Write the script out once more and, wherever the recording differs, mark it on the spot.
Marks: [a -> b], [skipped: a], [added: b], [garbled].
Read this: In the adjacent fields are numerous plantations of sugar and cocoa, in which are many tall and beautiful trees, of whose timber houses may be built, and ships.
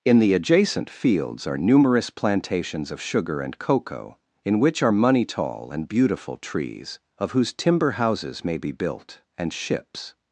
In the adjacent fields are numerous plantations of sugar and cocoa, in which are [many -> money] tall and beautiful trees, of whose timber houses may be built, and ships.